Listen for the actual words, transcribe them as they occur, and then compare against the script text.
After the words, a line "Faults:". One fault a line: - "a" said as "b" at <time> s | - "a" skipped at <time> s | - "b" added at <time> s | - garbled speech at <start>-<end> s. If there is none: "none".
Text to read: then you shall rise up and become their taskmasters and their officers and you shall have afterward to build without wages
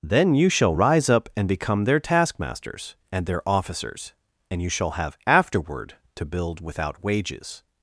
then you shall rise up and become their taskmasters and their officers and you shall have afterward to build without wages
Faults:
none